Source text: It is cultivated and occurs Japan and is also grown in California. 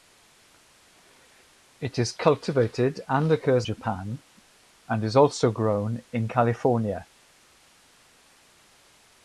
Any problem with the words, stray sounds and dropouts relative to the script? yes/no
no